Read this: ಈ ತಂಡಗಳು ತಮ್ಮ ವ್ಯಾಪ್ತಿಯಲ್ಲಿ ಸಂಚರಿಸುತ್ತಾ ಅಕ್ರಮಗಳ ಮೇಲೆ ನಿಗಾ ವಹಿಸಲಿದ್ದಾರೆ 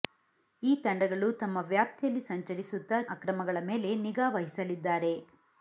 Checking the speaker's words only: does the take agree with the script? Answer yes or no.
yes